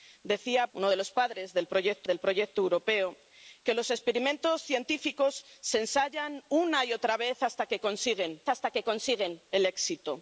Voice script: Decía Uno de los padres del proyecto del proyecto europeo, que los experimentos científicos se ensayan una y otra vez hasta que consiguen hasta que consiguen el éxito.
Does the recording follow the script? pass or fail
pass